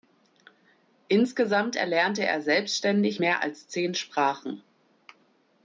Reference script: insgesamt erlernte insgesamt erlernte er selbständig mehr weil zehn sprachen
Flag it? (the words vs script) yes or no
yes